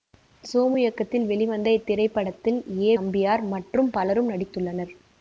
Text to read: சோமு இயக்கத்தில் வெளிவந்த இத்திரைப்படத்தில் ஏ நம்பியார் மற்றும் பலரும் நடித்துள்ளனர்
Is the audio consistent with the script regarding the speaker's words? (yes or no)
yes